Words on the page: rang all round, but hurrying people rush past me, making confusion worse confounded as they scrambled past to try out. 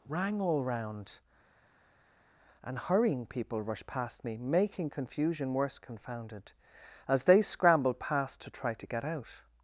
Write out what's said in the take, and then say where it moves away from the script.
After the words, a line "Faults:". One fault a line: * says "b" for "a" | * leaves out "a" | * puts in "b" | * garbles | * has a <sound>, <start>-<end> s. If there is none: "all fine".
rang all round, and hurrying people rushed past me, making confusion worse confounded as they scrambled past to try to get out.
Faults:
* says "and" for "but"
* says "rushed" for "rush"
* puts in "to get"